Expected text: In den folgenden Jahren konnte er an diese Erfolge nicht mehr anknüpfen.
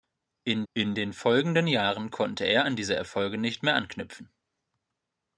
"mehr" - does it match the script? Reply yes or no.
yes